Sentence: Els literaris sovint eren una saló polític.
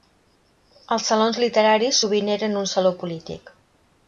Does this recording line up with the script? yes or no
no